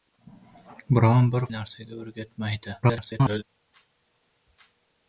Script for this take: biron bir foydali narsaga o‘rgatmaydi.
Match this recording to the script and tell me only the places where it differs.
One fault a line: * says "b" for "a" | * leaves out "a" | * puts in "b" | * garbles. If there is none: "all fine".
* leaves out "foydali"
* garbles